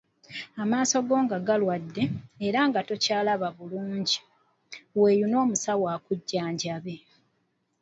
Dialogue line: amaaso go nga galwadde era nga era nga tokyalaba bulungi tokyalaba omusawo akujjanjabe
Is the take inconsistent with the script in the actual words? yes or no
yes